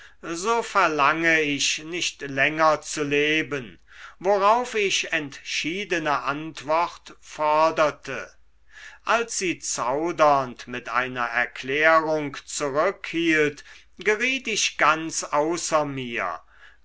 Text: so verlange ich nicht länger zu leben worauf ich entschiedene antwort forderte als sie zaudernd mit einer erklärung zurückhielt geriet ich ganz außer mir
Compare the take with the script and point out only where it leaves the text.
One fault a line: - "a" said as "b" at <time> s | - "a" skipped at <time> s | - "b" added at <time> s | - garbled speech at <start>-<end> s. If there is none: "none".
none